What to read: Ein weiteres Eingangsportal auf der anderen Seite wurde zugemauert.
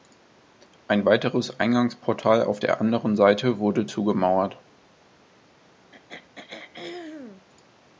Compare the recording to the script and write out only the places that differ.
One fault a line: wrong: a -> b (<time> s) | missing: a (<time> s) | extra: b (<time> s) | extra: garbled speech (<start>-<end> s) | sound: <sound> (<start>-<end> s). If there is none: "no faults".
sound: throat clearing (5.9-7.5 s)